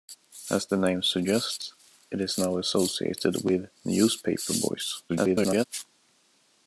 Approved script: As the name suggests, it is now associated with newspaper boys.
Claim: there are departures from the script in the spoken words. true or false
true